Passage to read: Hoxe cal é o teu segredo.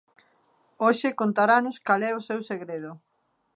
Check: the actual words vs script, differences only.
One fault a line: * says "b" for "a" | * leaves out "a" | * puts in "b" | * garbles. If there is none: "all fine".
* puts in "contaranos"
* says "seu" for "teu"